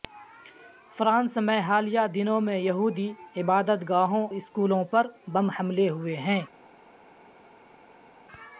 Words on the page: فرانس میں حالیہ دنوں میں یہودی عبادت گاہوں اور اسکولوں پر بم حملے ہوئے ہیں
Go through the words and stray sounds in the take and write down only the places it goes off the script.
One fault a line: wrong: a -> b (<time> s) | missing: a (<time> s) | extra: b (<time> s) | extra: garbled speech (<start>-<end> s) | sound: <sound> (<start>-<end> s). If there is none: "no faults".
missing: اور (4.3 s)